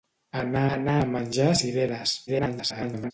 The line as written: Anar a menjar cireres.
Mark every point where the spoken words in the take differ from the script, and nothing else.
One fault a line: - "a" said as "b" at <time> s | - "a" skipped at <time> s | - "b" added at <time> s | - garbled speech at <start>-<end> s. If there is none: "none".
- "anar" added at 0.7 s
- garbled speech at 2.3-3.1 s